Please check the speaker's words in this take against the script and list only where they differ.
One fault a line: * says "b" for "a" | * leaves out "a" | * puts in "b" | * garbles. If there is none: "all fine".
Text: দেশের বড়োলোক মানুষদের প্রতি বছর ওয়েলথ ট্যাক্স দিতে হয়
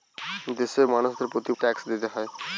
* leaves out "বড়োলোক"
* leaves out "বছর ওয়েলথ"